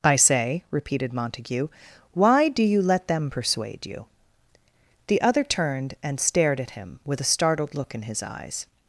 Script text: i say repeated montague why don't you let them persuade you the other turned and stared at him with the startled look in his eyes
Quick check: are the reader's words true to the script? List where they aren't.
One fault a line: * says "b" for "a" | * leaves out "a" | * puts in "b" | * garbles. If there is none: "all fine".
* says "do" for "don't"
* says "a" for "the"